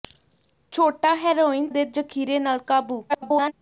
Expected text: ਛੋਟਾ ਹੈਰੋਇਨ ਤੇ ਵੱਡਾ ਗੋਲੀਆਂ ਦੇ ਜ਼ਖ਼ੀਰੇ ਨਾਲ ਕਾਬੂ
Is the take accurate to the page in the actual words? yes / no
no